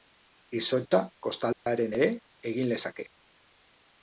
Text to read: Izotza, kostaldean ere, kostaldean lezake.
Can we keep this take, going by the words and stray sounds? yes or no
no